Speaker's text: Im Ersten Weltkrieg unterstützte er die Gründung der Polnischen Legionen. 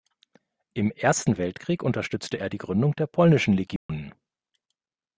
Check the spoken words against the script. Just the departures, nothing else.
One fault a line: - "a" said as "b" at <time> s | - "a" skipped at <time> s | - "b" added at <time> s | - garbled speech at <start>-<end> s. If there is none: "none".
none